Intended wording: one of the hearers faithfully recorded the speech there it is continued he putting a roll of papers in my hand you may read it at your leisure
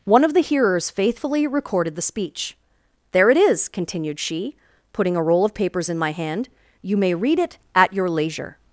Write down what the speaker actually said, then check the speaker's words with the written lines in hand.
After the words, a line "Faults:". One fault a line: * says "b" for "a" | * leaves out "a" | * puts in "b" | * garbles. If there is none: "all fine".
one of the hearers faithfully recorded the speech there it is continued she putting a roll of papers in my hand you may read it at your leisure
Faults:
* says "she" for "he"